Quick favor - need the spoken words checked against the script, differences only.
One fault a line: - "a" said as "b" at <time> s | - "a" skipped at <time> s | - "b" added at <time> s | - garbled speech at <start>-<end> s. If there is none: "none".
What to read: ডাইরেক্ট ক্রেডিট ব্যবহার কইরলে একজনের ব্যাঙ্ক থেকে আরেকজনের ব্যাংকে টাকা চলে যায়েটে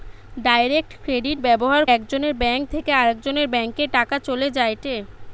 - "কইরলে" skipped at 1.8 s